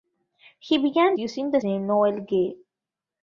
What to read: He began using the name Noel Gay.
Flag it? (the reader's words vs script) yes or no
no